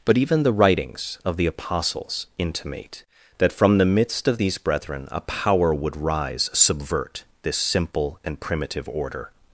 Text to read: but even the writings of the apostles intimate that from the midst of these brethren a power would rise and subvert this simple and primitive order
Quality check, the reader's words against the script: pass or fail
fail